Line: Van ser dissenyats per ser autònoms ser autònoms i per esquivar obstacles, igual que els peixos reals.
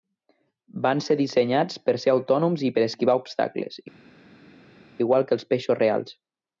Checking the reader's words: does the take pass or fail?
fail